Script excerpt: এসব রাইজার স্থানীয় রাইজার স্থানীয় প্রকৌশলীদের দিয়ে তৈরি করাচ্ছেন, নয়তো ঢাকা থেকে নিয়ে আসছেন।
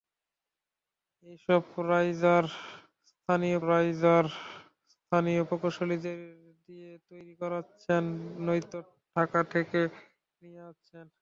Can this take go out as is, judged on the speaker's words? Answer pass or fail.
pass